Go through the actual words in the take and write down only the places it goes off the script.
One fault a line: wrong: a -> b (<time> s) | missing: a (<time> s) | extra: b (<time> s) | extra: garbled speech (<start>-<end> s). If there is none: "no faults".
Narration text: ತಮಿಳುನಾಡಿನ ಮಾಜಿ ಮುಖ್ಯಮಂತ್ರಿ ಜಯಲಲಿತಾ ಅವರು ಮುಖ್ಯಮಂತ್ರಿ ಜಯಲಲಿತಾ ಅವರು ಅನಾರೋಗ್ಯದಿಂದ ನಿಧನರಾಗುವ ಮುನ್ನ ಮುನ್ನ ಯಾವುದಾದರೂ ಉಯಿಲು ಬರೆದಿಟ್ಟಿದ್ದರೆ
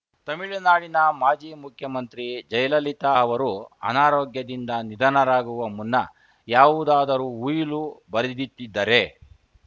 missing: ಮುಖ್ಯಮಂತ್ರಿ ಜಯಲಲಿತಾ ಅವರು (3.5 s)
missing: ಮುನ್ನ (5.9 s)